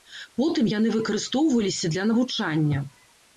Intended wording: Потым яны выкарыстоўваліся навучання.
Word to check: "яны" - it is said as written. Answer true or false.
true